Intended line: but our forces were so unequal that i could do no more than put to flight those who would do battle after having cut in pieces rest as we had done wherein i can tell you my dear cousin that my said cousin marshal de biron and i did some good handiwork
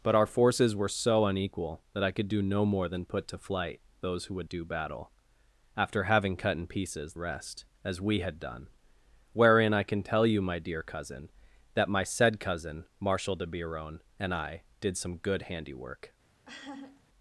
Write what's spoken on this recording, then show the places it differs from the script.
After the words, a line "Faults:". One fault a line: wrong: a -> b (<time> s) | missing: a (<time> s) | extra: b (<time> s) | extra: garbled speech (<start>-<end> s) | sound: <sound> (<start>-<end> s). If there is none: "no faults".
but our forces were so unequal that i could do no more than put to flight those who would do battle after having cut in pieces rest as we had done wherein i can tell you my dear cousin that my said cousin marshal de biron and i did some good handiwork
Faults:
sound: laugh (16.5-17.0 s)